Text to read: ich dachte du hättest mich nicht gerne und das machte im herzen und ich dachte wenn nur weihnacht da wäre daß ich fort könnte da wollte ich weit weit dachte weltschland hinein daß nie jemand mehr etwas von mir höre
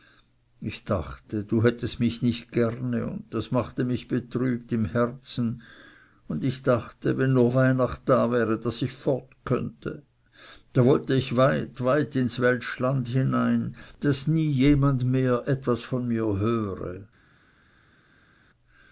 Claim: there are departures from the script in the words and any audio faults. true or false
true